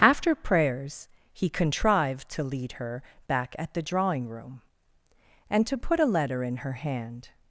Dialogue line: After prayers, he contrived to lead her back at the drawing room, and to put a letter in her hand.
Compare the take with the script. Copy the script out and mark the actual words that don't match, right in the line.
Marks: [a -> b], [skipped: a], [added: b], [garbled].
After prayers, he contrived to lead her back at the drawing room, and to put a letter in her hand.